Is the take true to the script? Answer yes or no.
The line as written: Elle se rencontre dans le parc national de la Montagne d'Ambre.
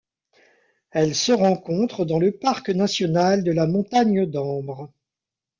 yes